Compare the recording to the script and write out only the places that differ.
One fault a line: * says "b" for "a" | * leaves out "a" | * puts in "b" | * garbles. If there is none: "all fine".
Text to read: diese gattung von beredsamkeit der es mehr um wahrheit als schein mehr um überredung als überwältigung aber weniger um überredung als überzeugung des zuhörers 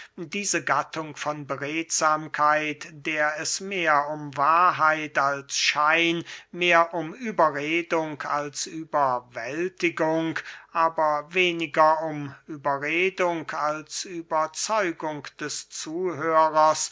all fine